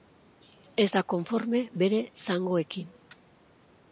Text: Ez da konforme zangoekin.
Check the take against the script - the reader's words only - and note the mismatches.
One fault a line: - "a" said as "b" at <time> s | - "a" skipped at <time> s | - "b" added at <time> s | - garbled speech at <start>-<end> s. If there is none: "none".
- "bere" added at 1.8 s